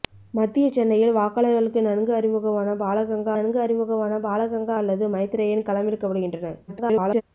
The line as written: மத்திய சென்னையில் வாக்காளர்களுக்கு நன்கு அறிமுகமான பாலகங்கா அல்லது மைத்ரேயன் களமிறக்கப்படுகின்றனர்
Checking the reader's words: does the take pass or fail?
fail